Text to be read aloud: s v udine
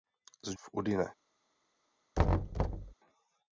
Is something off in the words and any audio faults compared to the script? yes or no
yes